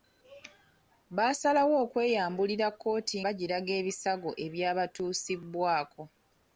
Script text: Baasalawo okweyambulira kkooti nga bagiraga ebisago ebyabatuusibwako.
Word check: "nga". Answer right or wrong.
wrong